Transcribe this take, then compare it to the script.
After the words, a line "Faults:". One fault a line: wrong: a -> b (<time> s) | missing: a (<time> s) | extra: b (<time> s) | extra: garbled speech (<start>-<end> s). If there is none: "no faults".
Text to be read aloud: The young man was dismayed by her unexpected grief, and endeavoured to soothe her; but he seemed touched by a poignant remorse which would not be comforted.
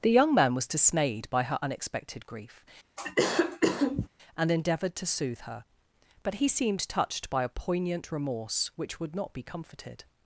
The young man was dismayed by her unexpected grief, and endeavoured to soothe her; but he seemed touched by a poignant remorse which would not be comforted.
Faults:
no faults